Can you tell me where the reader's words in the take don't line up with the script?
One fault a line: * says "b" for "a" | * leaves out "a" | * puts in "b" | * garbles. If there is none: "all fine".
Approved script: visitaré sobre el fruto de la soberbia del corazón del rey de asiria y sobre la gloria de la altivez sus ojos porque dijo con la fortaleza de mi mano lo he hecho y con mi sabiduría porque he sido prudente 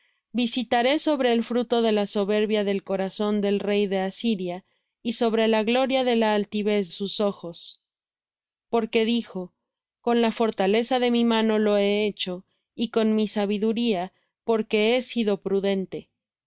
all fine